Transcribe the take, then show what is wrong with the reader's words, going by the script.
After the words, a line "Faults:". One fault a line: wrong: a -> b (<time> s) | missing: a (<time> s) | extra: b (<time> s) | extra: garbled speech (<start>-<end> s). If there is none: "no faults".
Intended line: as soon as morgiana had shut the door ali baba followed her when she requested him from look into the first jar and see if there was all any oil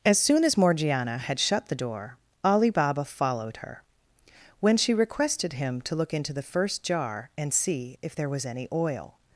as soon as morgiana had shut the door ali baba followed her when she requested him to look into the first jar and see if there was any oil
Faults:
wrong: from -> to (5.8 s)
missing: all (8.4 s)